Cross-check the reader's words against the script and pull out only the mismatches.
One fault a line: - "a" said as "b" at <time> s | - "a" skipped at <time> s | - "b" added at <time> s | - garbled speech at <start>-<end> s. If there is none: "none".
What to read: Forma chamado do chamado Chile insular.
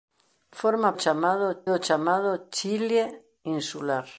none